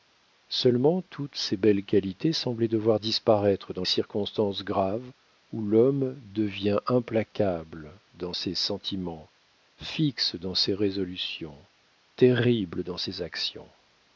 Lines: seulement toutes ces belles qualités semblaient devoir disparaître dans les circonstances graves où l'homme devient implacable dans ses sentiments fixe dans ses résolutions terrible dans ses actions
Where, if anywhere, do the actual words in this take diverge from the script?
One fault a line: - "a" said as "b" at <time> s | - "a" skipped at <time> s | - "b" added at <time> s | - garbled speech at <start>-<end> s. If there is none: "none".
- "les" skipped at 3.8 s